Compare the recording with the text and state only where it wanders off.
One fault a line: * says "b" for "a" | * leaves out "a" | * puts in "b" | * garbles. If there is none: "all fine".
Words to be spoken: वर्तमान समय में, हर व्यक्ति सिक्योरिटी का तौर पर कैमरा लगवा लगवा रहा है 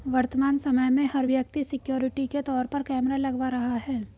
* says "के" for "का"
* leaves out "लगवा"